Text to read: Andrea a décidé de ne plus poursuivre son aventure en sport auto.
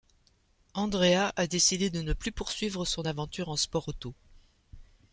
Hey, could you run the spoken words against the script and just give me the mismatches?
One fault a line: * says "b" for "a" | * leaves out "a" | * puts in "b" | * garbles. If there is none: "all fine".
all fine